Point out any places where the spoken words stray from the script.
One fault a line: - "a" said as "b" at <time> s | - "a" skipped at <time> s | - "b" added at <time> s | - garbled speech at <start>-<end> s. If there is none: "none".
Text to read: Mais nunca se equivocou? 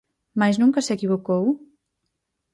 none